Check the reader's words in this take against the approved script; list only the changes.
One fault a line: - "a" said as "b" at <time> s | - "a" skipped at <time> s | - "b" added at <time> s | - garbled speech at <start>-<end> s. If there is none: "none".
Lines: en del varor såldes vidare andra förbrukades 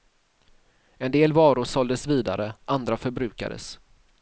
none